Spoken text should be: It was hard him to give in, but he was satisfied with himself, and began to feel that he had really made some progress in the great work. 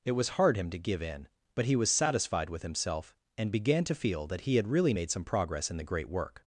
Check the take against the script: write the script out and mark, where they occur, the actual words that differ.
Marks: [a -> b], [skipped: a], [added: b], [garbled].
It was hard him to give in, but he was satisfied with himself, and began to feel that he had really made some progress in the great work.